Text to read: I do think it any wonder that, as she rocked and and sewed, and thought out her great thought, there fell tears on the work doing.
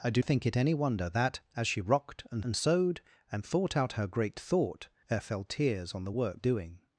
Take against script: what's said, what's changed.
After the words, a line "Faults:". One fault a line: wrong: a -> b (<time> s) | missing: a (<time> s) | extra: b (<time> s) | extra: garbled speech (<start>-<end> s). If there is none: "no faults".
I do think it any wonder that, as she rocked and and sewed, and thought out her great thought, there fell tears on the work doing.
Faults:
no faults